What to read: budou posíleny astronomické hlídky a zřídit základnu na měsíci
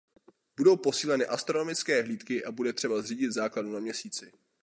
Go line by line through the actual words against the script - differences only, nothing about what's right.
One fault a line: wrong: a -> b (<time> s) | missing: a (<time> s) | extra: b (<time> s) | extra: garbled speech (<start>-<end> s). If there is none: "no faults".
extra: bude třeba (2.5 s)